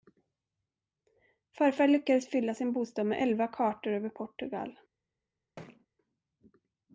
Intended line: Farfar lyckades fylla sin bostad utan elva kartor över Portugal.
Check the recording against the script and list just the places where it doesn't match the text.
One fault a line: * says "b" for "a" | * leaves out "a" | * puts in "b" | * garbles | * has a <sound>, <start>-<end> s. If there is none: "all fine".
* says "med" for "utan"
* has a thud, 5.6-5.9 s